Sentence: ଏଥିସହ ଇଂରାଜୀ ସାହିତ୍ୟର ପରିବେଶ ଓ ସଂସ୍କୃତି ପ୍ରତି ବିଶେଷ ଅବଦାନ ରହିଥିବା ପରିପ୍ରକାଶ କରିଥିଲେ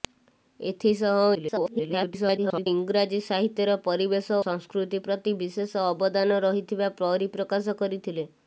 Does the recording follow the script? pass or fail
fail